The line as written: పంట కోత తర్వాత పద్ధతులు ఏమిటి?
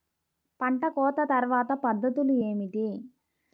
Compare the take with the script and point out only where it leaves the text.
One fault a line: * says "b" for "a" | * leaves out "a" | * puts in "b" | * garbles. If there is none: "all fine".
all fine